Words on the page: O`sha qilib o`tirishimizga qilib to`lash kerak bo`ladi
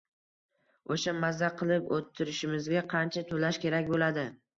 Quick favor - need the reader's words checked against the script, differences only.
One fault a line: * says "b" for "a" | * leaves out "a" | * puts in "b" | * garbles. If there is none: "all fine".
* puts in "maza"
* says "qancha" for "qilib"